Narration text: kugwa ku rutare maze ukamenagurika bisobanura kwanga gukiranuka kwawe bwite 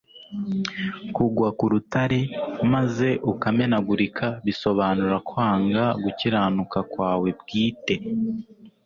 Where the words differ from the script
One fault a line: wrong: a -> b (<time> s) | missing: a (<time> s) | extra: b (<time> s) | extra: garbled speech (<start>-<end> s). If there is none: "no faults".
no faults